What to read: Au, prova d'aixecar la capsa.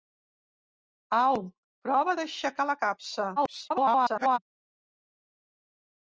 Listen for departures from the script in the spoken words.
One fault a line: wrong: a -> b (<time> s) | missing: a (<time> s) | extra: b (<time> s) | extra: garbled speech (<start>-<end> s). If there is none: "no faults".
extra: garbled speech (3.4-4.4 s)